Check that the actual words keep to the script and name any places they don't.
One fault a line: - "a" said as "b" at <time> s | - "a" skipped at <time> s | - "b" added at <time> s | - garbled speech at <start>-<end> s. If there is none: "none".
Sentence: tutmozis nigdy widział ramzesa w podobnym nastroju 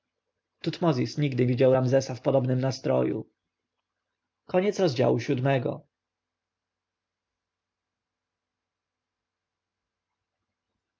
none